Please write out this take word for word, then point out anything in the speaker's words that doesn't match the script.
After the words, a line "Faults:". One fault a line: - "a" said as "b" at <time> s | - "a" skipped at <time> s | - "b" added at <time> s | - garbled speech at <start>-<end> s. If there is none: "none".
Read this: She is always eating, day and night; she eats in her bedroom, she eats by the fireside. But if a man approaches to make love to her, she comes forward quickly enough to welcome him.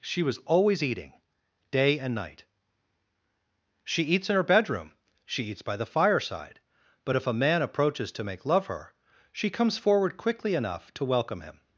She was always eating, day and night; she eats in her bedroom, she eats by the fireside. But if a man approaches to make love her, she comes forward quickly enough to welcome him.
Faults:
- "is" said as "was" at 0.2 s
- "to" skipped at 8.7 s